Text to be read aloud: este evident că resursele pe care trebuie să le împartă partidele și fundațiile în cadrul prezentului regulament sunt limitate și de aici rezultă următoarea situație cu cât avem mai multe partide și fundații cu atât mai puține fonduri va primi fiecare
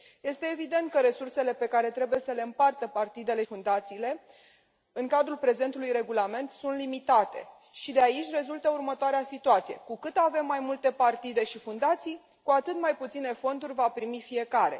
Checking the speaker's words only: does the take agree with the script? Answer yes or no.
no